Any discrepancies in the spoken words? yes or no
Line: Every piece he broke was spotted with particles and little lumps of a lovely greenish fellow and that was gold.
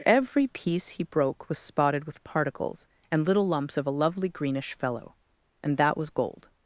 no